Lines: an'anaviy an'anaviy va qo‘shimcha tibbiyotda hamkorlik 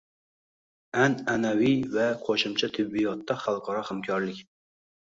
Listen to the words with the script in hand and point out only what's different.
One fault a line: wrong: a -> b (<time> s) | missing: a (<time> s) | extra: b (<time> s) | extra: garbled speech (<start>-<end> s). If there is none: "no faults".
missing: an'anaviy (1.8 s)
extra: xalqaro (3.5 s)